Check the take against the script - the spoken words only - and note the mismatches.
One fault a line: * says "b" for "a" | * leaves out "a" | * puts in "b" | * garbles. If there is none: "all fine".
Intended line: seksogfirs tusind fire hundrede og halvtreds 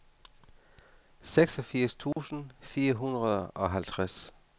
all fine